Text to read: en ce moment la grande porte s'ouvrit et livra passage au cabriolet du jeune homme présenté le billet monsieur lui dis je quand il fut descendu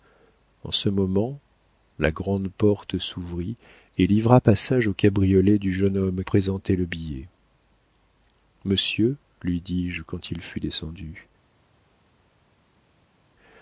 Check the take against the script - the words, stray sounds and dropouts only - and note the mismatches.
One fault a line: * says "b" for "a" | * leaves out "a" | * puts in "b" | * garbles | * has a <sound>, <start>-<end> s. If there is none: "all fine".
all fine